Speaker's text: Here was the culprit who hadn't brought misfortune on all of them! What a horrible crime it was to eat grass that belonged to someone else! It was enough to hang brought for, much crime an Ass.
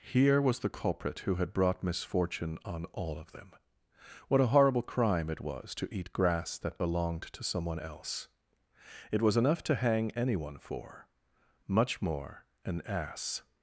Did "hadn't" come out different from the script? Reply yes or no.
yes